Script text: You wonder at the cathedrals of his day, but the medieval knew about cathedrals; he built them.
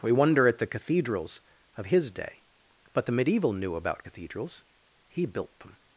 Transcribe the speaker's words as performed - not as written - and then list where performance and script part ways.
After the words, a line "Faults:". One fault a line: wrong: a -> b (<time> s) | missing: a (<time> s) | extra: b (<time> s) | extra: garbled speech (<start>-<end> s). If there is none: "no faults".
We wonder at the cathedrals of his day, but the medieval knew about cathedrals; he built them.
Faults:
wrong: You -> We (0.0 s)